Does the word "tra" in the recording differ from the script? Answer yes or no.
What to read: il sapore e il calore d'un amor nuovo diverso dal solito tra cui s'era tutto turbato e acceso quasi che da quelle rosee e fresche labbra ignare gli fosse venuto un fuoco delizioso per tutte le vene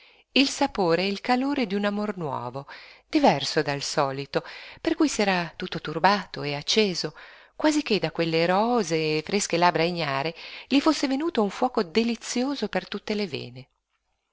yes